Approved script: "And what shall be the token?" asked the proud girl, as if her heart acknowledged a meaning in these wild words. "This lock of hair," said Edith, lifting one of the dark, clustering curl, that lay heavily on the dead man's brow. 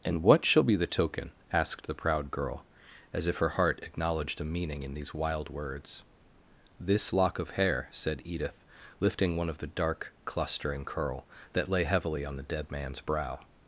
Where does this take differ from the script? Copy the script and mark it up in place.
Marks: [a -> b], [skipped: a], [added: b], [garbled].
"And what shall be the token?" asked the proud girl, as if her heart acknowledged a meaning in these wild words. "This lock of hair," said Edith, lifting one of the dark, clustering curl, that lay heavily on the dead man's brow.